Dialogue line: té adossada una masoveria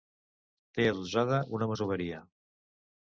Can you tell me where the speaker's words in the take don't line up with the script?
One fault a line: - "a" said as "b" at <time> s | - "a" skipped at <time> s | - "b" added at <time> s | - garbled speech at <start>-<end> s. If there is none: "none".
none